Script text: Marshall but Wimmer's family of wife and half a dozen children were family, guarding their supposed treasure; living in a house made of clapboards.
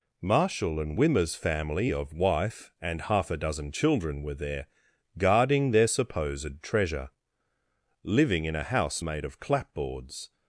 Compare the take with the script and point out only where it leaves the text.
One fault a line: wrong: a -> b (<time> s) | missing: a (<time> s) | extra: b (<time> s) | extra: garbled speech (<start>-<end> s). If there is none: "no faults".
wrong: but -> and (0.8 s)
wrong: family -> there (4.3 s)